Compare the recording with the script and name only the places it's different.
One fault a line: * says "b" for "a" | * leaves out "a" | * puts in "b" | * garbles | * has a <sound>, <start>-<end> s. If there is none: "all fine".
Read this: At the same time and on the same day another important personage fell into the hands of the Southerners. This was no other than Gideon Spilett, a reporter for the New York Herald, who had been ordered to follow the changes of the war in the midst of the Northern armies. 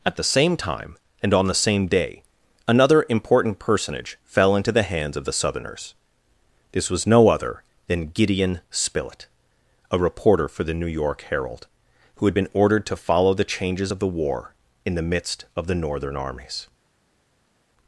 all fine